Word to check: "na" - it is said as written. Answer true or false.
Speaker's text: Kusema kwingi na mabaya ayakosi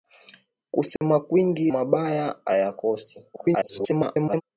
false